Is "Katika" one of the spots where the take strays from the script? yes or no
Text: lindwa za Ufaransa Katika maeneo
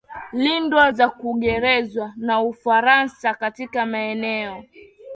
no